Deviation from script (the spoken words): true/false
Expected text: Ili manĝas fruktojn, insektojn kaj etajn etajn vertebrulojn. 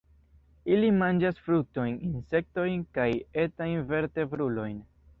true